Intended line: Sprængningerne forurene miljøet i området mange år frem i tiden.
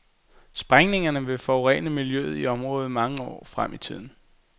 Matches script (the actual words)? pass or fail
fail